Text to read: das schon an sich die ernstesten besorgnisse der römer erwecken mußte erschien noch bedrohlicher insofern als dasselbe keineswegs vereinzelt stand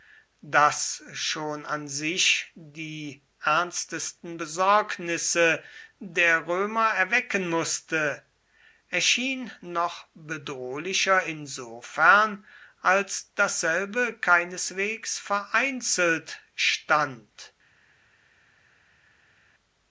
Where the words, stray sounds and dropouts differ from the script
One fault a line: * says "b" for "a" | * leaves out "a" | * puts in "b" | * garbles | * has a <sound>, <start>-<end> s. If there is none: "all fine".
all fine